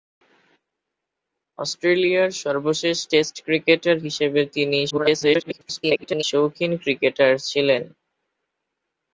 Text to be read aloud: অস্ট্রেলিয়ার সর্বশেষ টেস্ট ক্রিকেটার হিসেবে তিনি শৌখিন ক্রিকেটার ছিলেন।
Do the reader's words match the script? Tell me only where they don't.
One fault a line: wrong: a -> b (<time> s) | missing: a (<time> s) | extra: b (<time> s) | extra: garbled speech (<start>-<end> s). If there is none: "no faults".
extra: garbled speech (4.9-6.2 s)